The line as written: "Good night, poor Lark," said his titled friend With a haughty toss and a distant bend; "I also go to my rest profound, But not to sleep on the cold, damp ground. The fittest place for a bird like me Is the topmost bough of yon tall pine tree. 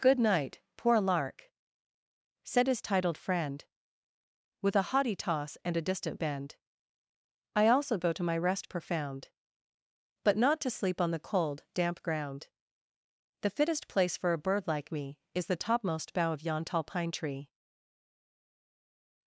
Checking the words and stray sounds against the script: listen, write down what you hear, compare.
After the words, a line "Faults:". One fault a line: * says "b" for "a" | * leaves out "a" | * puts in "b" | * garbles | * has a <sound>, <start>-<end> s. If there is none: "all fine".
"Good night, poor Lark," said his titled friend With a haughty toss and a distant bend; "I also go to my rest profound, But not to sleep on the cold, damp ground. The fittest place for a bird like me Is the topmost bough of yon tall pine tree.
Faults:
all fine